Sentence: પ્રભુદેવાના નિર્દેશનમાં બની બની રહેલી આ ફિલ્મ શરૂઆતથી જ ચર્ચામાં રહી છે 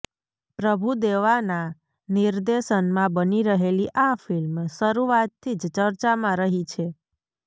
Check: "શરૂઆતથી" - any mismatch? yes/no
no